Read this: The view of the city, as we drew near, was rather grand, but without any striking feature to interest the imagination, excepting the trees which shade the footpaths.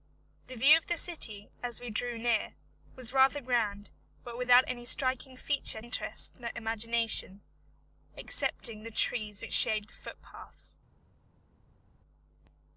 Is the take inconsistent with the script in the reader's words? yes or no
yes